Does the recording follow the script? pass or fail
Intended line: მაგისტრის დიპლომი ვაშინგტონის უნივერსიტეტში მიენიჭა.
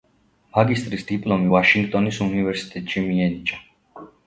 pass